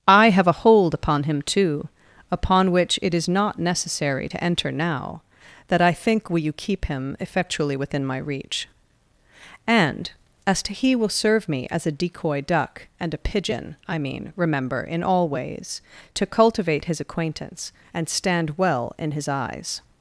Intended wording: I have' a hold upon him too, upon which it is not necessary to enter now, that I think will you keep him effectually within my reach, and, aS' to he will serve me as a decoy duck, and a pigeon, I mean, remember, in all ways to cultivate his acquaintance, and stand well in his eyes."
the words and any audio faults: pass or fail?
pass